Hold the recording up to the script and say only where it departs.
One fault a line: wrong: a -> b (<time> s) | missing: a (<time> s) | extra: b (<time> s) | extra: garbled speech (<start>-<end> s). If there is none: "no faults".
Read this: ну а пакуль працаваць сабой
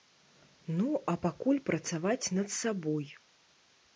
extra: над (2.4 s)